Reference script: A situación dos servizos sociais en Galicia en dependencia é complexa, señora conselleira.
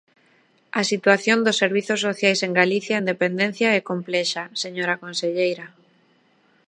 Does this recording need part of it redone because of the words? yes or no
no